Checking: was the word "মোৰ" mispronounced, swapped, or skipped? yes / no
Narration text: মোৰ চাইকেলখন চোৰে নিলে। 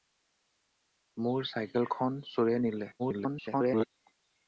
no